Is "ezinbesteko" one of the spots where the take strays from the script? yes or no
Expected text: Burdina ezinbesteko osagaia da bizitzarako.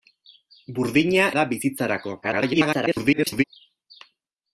yes